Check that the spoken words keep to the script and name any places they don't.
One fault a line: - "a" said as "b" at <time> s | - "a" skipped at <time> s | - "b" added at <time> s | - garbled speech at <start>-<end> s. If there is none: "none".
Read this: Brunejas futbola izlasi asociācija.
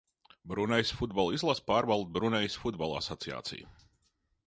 - "pārvalda Brunejas Futbola" added at 1.7 s